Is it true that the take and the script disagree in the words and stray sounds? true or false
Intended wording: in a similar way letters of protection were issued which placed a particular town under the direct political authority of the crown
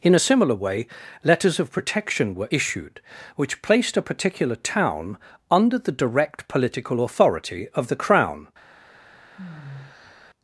true